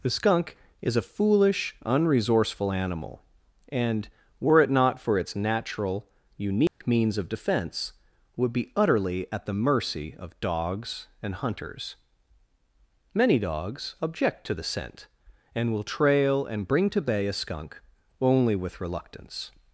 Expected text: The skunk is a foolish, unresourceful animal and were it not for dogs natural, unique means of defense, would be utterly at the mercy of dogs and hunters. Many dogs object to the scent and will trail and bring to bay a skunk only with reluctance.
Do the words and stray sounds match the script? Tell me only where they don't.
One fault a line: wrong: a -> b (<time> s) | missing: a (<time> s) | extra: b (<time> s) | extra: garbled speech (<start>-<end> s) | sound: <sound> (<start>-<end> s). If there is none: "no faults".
wrong: dogs -> its (5.2 s)
sound: dropout (6.7-6.8 s)